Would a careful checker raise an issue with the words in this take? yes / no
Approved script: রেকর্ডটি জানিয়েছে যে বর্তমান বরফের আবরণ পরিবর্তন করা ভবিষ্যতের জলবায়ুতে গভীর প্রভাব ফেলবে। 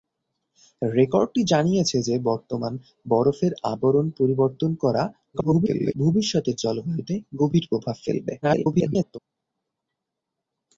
yes